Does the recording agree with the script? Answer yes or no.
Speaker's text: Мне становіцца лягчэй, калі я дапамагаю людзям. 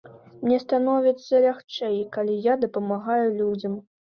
yes